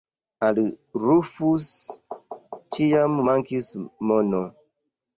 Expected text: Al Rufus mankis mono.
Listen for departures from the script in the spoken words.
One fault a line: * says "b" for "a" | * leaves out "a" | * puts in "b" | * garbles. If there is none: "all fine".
* puts in "ĉiam"